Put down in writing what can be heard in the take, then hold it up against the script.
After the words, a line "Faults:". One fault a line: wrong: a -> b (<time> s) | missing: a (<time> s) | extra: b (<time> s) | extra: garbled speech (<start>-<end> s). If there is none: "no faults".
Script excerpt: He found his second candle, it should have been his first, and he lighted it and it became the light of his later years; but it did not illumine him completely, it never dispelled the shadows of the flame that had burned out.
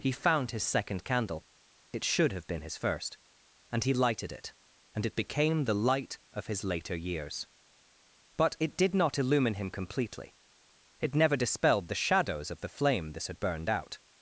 He found his second candle, it should have been his first, and he lighted it and it became the light of his later years; but it did not illumine him completely, it never dispelled the shadows of the flame this had burned out.
Faults:
wrong: that -> this (13.1 s)